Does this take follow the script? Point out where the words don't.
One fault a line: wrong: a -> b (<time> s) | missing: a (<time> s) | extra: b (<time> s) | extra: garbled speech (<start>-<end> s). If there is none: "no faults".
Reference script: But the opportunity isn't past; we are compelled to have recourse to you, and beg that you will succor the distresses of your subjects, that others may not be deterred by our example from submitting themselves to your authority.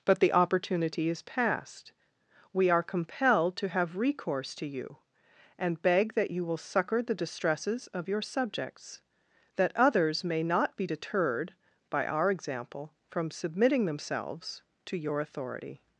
wrong: isn't -> is (1.1 s)